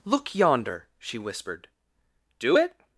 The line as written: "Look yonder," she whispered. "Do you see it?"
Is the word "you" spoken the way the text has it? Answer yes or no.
no